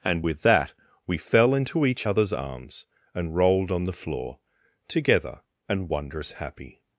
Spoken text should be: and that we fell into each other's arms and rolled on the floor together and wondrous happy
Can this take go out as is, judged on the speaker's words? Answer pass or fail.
fail